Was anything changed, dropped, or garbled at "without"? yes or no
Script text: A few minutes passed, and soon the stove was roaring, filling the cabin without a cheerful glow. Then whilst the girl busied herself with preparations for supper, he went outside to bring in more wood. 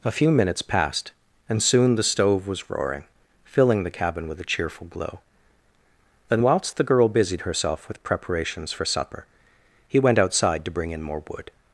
yes